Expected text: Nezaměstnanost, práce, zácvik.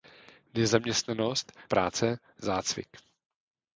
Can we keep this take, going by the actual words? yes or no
yes